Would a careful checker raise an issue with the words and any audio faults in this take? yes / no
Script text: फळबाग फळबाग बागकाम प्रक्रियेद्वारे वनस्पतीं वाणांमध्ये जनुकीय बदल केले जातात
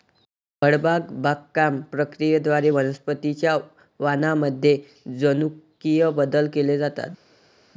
yes